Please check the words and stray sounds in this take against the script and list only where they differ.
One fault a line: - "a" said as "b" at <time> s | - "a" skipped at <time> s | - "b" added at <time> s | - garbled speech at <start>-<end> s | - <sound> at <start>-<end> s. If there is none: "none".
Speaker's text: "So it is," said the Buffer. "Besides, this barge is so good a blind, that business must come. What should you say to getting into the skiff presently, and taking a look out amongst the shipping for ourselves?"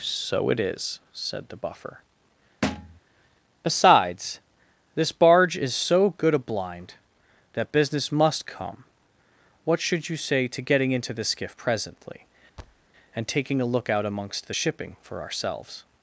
- thud at 2.6-3.0 s
- thud at 12.6-12.9 s